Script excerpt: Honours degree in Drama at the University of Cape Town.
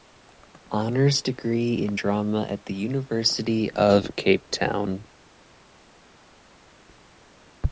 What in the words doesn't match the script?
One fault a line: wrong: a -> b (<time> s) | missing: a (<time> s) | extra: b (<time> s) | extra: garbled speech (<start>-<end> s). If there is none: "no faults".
no faults